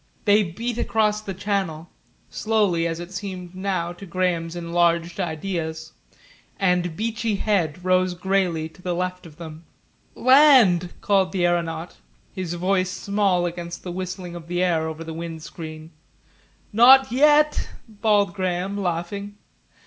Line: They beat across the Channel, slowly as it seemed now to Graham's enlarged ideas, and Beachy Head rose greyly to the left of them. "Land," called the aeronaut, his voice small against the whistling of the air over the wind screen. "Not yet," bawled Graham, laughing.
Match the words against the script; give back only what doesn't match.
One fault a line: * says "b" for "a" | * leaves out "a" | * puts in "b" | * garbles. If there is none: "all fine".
all fine